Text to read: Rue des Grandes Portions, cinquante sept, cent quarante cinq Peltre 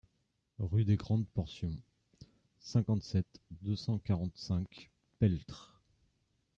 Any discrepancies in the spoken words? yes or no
yes